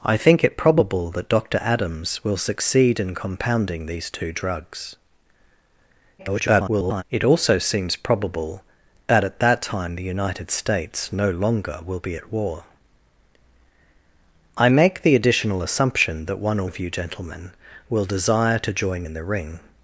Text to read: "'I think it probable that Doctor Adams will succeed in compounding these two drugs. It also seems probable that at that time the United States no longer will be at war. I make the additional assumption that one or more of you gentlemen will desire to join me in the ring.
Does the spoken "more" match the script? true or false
false